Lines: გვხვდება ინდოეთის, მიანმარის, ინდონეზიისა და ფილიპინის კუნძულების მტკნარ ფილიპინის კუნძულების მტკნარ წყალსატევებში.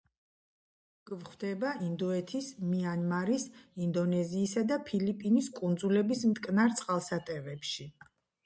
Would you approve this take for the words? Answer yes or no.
no